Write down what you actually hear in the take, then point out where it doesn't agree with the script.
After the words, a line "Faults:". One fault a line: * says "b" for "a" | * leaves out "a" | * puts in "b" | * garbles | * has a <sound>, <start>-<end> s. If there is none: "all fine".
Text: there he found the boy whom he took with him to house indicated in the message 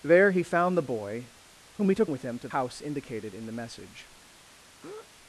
there he found the boy whom he took with him to house indicated in the message
Faults:
* has a breath, 4.8-5.1 s